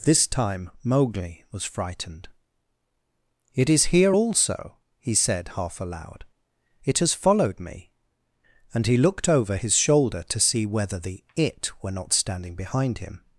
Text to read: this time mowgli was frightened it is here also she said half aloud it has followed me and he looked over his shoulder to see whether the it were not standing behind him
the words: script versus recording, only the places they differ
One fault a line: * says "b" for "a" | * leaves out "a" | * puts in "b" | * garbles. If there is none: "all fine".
* says "he" for "she"